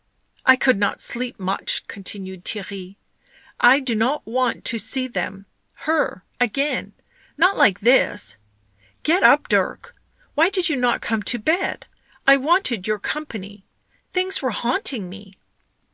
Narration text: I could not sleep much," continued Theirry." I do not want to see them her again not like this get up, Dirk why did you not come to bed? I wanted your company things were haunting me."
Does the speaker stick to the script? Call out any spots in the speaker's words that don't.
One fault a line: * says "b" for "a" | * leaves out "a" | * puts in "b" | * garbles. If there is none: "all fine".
all fine